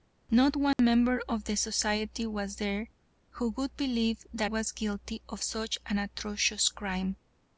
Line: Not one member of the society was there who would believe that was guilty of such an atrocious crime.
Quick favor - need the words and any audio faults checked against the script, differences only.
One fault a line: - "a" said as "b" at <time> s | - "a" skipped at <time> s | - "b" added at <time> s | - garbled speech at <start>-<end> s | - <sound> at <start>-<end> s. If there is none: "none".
- dropout at 0.7-0.8 s